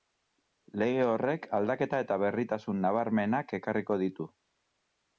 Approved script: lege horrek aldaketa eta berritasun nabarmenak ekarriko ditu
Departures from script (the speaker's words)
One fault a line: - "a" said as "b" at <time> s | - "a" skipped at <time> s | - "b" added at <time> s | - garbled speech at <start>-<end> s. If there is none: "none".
none